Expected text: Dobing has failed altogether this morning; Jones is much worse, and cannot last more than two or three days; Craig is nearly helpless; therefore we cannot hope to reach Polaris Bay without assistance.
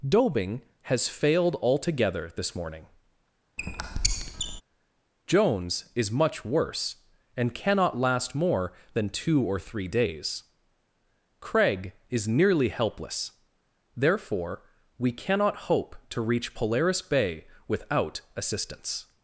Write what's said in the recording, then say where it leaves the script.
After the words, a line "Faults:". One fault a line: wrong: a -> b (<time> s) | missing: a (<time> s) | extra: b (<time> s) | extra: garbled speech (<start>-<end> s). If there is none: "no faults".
Dobing has failed altogether this morning; Jones is much worse, and cannot last more than two or three days; Craig is nearly helpless; therefore we cannot hope to reach Polaris Bay without assistance.
Faults:
no faults